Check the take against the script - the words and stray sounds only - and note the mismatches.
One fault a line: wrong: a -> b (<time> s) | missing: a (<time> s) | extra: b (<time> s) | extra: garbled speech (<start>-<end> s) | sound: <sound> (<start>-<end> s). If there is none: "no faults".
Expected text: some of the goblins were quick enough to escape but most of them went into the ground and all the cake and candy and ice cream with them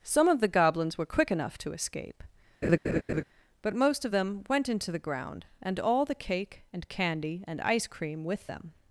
sound: laugh (2.6-3.2 s)